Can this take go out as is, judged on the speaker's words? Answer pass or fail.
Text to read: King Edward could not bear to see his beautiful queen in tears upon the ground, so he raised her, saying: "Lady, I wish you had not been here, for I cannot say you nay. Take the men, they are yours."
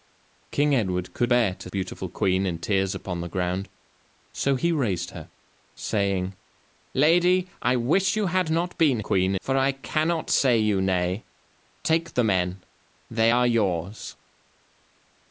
fail